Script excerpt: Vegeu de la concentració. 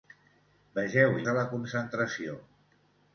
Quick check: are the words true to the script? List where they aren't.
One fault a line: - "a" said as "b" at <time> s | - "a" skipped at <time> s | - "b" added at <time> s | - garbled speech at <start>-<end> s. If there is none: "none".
none